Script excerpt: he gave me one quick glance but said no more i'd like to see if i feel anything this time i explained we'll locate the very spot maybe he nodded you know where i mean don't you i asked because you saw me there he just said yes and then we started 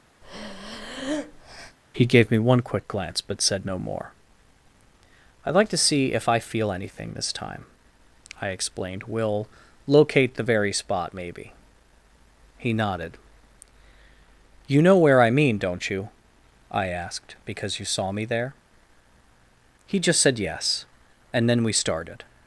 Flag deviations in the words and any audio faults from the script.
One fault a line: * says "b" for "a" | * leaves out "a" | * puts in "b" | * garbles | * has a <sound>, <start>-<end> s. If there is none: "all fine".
* has a breath, 0.2-1.8 s